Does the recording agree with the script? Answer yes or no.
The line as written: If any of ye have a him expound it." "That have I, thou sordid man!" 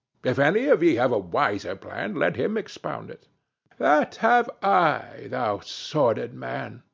no